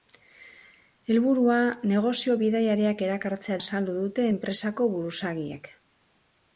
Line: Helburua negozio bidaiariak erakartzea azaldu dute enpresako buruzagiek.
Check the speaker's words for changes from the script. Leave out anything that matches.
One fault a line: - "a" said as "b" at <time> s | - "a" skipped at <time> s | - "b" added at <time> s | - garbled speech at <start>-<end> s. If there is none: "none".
none